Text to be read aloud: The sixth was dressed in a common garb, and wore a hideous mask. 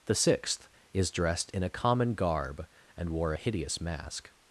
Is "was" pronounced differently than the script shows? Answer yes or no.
yes